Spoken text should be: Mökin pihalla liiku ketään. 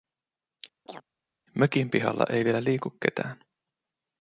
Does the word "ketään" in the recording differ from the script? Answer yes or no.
no